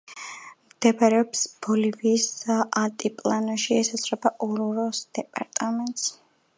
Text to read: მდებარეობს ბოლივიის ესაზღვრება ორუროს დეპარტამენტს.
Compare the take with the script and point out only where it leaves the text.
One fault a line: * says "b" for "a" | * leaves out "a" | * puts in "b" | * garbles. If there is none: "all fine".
* puts in "ალტიპლანოში"